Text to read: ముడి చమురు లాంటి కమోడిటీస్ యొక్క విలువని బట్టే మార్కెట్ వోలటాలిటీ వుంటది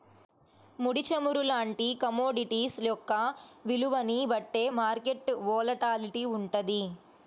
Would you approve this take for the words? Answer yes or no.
yes